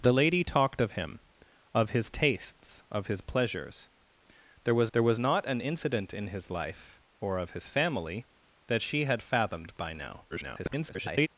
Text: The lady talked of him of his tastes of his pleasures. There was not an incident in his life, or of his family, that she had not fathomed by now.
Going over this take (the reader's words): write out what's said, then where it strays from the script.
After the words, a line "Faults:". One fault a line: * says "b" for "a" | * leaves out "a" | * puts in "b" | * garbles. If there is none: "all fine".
The lady talked of him of his tastes of his pleasures. There was there was not an incident in his life, or of his family, that she had fathomed by now. [garbled]
Faults:
* puts in "there was"
* leaves out "not"
* garbles